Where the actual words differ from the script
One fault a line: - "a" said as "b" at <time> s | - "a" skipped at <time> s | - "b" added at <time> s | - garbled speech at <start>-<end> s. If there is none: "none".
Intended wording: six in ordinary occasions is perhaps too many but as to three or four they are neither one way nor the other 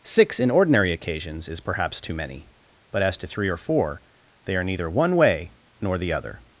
none